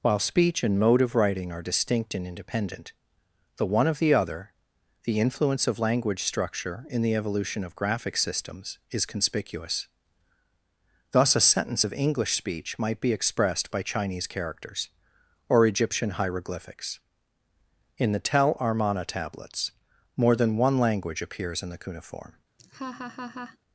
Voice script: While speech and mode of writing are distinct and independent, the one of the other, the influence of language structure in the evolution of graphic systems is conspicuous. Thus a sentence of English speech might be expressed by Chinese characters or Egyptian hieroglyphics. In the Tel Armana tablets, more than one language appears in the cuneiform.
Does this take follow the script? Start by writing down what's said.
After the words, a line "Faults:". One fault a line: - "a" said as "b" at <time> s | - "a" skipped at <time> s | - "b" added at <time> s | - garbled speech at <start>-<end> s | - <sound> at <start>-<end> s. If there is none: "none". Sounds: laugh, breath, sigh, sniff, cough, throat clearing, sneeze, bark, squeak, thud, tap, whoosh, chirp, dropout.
While speech and mode of writing are distinct and independent, the one of the other, the influence of language structure in the evolution of graphic systems is conspicuous. Thus a sentence of English speech might be expressed by Chinese characters or Egyptian hieroglyphics. In the Tel Armana tablets, more than one language appears in the cuneiform.
Faults:
- laugh at 22.6-23.6 s